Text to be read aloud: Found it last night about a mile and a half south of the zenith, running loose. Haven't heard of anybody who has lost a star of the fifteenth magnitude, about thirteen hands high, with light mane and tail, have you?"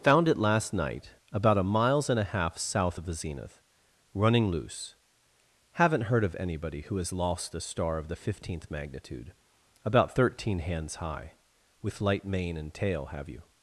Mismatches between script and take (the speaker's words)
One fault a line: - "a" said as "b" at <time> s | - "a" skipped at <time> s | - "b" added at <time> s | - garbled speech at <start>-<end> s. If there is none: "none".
- "mile" said as "miles" at 1.6 s